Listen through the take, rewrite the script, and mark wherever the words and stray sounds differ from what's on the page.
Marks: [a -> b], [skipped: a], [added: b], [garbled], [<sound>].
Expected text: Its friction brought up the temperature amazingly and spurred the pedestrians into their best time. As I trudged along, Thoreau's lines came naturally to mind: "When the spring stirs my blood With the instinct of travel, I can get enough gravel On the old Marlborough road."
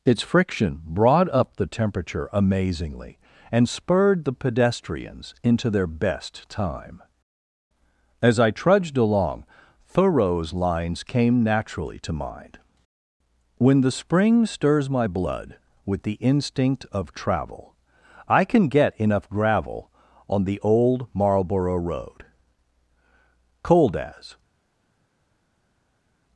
Its friction brought up the temperature amazingly and spurred the pedestrians into their best time. As I trudged along, Thoreau's lines came naturally to mind: "When the spring stirs my blood With the instinct of travel, I can get enough gravel On the old Marlborough road." [added: Cold as]